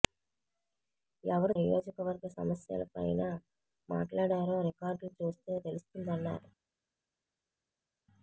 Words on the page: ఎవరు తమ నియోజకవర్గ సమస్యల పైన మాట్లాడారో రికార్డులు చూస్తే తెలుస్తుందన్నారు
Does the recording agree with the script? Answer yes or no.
no